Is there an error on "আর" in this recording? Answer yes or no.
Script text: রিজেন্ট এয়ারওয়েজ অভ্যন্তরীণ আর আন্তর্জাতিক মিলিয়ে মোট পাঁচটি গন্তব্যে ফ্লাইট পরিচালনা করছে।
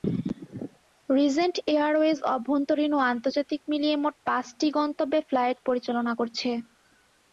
yes